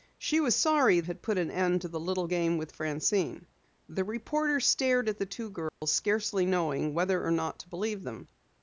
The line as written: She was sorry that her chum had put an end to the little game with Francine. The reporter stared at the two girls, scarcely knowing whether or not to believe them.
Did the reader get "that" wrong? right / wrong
wrong